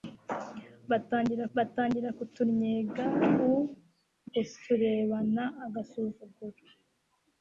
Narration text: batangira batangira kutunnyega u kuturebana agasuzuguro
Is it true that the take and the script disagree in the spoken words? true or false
false